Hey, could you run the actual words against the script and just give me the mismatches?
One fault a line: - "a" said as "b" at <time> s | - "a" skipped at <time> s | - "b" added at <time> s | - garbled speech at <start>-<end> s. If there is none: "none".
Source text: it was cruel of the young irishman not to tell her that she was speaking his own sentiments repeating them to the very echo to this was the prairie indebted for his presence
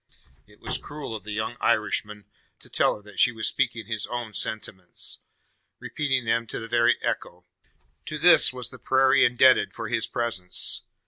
- "not" skipped at 2.2 s